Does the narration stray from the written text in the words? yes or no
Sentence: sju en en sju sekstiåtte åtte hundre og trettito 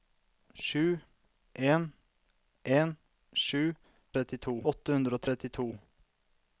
yes